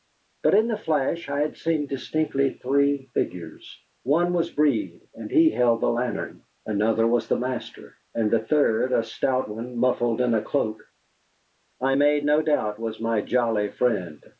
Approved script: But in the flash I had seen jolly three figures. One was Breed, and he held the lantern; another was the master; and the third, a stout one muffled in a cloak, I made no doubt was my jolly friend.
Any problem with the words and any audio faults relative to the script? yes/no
yes